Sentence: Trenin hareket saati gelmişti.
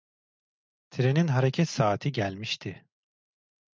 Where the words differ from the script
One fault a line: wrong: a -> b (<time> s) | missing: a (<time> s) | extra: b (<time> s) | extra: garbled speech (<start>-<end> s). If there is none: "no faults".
no faults